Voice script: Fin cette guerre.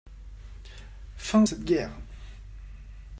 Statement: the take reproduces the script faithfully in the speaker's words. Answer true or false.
true